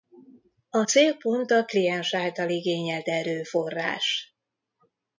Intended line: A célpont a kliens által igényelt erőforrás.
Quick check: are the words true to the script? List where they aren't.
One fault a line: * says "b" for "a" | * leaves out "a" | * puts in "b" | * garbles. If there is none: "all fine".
all fine